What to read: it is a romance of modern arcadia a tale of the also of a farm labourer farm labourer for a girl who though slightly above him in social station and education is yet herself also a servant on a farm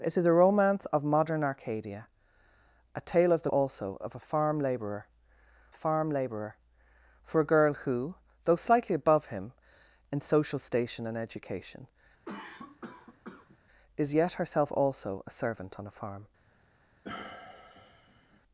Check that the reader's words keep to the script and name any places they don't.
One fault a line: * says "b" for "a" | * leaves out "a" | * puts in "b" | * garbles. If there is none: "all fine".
all fine